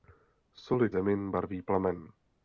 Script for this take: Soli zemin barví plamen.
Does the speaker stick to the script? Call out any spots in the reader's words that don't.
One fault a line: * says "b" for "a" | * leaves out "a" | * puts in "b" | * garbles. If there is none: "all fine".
all fine